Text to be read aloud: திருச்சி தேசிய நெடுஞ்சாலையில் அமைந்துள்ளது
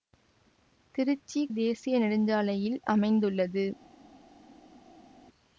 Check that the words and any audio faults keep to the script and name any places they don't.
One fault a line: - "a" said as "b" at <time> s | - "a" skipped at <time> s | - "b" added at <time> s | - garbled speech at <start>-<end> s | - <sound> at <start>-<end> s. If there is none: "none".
none